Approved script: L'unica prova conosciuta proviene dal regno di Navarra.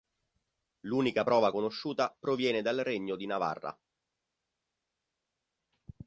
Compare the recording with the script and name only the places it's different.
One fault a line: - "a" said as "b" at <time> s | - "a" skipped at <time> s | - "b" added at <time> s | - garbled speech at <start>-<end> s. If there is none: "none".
none